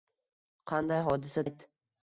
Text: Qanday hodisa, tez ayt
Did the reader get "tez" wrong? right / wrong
wrong